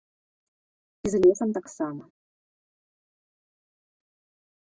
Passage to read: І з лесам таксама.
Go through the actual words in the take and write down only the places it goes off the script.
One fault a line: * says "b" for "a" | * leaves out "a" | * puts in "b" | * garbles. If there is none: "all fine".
all fine